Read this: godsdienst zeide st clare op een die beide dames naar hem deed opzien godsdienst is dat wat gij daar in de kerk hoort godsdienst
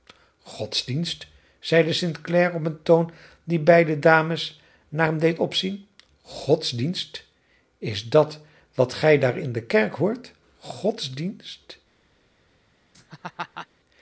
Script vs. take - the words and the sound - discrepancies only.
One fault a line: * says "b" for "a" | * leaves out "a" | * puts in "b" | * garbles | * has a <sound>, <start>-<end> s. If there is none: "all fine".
* puts in "toon"
* has a laugh, 12.9-13.7 s